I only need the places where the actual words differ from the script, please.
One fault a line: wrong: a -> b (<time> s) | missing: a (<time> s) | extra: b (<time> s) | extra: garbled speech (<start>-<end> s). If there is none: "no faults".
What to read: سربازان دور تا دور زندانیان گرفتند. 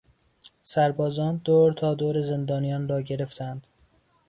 extra: را (2.9 s)